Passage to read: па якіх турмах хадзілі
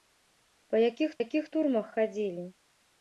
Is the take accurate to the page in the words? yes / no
no